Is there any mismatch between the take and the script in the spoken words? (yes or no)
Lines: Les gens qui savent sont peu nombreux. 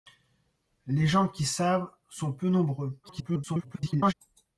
yes